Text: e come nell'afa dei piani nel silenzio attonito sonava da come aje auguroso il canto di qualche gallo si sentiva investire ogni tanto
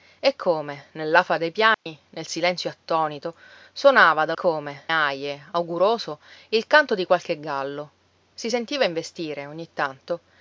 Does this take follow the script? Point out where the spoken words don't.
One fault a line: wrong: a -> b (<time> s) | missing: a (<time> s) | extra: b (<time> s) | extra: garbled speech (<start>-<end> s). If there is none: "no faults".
no faults